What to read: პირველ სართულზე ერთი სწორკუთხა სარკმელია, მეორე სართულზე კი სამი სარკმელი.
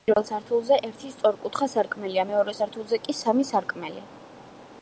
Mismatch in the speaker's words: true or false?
false